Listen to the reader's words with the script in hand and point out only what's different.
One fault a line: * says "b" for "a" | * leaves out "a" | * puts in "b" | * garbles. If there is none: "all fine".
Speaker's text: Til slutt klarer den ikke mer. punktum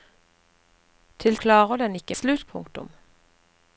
* leaves out "slutt"
* says "slutt" for "mer"